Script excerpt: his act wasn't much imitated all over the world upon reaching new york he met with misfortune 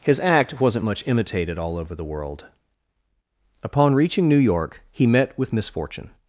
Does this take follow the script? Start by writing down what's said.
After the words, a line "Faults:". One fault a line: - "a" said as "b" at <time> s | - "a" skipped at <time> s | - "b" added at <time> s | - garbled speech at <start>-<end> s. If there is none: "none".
his act wasn't much imitated all over the world upon reaching new york he met with misfortune
Faults:
none